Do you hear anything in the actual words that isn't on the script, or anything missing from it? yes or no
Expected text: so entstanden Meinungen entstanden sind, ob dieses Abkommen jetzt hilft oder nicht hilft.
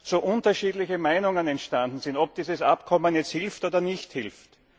yes